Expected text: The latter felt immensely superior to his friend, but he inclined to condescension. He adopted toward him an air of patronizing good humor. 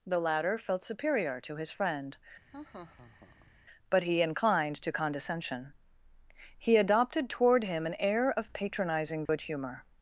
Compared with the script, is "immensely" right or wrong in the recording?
wrong